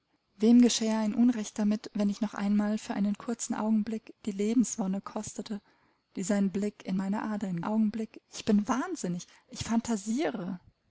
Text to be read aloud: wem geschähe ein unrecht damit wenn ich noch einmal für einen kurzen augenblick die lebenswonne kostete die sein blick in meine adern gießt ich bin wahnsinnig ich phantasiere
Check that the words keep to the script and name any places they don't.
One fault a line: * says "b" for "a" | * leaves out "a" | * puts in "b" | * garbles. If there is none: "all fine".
* says "augenblick" for "gießt"